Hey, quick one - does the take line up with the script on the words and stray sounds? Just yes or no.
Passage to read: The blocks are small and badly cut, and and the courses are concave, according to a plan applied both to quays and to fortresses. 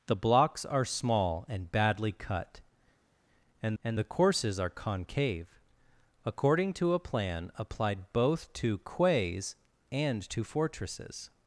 yes